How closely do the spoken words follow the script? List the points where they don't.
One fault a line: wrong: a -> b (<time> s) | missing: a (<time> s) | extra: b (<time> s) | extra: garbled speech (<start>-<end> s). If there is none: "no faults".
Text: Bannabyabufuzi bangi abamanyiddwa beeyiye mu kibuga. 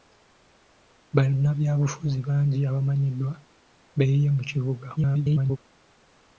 extra: garbled speech (5.0-5.6 s)